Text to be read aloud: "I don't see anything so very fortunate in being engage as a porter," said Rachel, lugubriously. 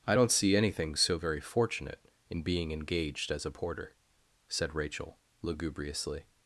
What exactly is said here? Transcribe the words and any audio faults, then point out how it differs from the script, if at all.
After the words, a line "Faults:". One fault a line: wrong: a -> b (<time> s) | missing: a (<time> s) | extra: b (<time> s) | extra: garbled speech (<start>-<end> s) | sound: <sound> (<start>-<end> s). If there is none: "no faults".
"I don't see anything so very fortunate in being engaged as a porter," said Rachel, lugubriously.
Faults:
wrong: engage -> engaged (2.7 s)